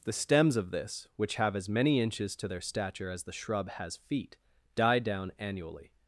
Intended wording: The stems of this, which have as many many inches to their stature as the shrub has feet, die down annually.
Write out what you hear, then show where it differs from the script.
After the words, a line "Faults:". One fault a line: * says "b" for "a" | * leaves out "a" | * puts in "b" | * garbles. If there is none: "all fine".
The stems of this, which have as many inches to their stature as the shrub has feet, die down annually.
Faults:
* leaves out "many"